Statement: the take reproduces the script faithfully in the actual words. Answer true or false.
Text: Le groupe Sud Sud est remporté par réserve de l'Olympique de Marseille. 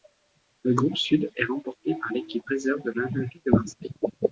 false